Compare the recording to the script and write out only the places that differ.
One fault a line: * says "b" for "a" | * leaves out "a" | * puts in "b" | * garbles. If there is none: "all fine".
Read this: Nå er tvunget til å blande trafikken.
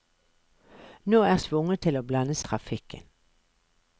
all fine